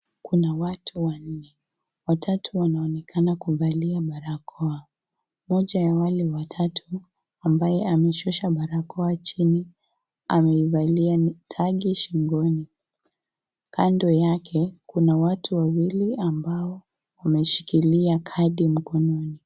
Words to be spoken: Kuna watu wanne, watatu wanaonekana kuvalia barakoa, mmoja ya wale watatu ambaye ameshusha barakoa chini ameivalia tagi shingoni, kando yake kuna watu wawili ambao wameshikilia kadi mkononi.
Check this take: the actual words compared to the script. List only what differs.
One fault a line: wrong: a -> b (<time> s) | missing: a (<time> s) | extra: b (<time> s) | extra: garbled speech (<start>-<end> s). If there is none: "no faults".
no faults